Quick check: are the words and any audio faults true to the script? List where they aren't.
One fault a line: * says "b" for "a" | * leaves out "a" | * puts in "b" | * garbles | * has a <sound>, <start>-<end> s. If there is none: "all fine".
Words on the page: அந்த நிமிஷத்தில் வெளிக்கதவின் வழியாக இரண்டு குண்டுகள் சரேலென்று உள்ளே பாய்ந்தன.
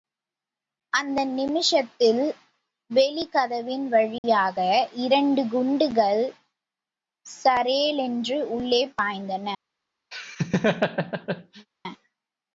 * has a dropout, 4.2-4.2 s
* has a laugh, 10.1-11.7 s